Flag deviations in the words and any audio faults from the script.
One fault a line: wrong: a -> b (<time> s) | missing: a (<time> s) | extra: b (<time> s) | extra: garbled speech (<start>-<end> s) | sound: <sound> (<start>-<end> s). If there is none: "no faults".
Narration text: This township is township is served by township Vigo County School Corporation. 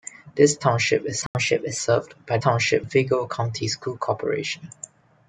sound: dropout (1.3-1.3 s)